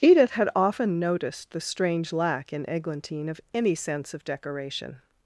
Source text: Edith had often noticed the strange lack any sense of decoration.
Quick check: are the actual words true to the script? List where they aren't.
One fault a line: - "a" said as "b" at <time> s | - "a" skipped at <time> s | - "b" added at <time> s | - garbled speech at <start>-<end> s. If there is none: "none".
- "in Eglantine of" added at 2.5 s